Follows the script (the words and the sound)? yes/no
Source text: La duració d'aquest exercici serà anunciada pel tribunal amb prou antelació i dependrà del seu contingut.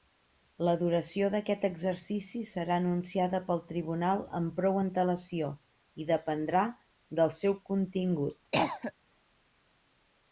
no